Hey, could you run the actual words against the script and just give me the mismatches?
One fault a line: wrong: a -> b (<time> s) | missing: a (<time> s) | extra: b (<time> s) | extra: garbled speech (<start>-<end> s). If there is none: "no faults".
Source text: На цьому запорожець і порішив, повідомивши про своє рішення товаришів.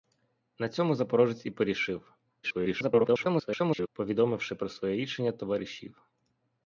extra: garbled speech (2.4-3.9 s)